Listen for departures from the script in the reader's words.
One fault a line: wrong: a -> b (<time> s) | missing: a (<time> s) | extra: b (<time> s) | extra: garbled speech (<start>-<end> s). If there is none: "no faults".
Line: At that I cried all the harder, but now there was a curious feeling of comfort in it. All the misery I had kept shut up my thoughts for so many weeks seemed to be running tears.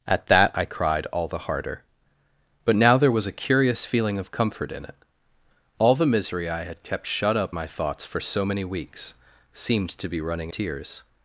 no faults